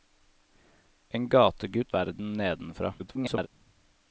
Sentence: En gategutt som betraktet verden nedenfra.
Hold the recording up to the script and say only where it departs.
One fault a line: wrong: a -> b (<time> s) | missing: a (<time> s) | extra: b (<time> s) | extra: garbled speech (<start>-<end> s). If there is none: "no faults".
missing: som betraktet (1.9 s)
extra: garbled speech (3.0-3.5 s)